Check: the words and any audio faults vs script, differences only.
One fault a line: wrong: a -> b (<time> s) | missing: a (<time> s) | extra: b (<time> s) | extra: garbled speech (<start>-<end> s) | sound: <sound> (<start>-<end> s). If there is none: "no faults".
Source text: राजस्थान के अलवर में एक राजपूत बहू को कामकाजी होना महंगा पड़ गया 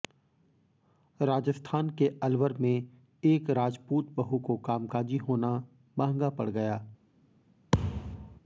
sound: thud (7.7-8.4 s)